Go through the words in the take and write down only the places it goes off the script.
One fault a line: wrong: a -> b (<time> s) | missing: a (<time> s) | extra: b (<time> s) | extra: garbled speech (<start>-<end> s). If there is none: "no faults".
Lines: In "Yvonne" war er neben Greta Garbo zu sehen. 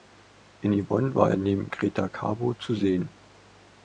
no faults